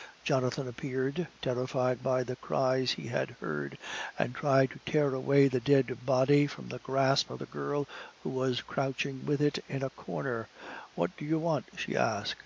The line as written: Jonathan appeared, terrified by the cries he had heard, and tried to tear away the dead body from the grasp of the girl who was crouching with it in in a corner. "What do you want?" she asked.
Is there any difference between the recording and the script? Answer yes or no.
yes